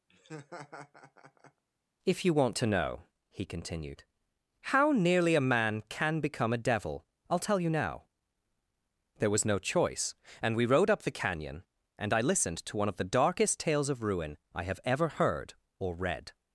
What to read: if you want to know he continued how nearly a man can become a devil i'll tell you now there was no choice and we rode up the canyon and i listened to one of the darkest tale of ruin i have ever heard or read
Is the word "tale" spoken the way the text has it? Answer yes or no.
no